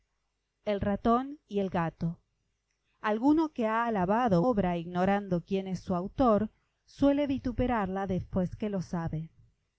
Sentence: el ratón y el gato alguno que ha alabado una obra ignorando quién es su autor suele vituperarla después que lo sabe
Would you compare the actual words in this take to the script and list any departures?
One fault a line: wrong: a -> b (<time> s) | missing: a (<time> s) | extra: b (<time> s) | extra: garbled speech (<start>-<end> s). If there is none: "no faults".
missing: una (4.4 s)